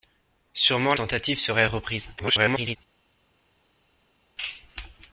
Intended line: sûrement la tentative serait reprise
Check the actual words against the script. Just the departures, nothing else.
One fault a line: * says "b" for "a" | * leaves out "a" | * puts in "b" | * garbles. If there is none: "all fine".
* leaves out "la"
* garbles